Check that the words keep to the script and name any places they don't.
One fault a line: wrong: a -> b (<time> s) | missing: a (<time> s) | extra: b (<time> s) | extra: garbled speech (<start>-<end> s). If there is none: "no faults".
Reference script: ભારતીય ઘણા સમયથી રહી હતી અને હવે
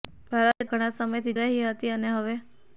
no faults